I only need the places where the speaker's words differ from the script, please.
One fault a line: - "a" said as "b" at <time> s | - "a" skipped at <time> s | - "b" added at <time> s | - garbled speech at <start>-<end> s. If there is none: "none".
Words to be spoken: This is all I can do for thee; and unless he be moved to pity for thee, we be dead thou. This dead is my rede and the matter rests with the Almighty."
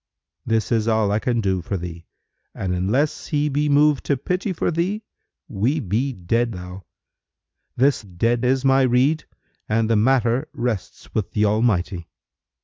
none